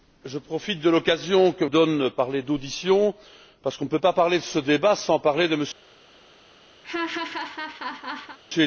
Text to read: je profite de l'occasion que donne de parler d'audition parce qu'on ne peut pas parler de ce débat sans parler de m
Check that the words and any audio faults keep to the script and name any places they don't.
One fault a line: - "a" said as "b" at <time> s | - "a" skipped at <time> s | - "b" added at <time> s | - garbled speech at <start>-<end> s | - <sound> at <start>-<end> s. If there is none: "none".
- laugh at 6.8-8.4 s